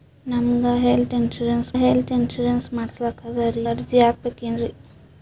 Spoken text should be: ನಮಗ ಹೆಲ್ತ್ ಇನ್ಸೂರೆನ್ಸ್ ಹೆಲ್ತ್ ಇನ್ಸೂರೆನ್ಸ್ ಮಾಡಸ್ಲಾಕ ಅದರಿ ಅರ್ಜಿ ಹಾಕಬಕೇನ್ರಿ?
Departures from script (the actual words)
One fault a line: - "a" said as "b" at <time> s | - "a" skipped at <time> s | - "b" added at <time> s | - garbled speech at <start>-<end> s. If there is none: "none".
none